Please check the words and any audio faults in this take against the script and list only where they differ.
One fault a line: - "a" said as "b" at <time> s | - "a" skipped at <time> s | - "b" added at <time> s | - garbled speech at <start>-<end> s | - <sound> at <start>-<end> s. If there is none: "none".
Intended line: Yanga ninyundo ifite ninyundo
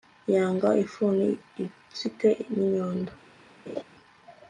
- "ninyundo" said as "ifuni" at 0.8 s
- laugh at 3.7-3.8 s